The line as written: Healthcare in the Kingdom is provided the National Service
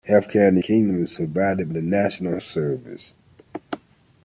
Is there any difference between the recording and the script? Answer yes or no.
no